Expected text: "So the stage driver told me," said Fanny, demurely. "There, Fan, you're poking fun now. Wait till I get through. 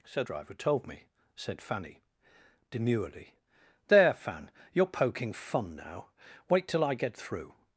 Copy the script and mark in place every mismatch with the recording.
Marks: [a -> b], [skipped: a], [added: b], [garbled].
"So [skipped: the stage] driver told me," said Fanny, demurely. "There, Fan, you're poking fun now. Wait till I get through.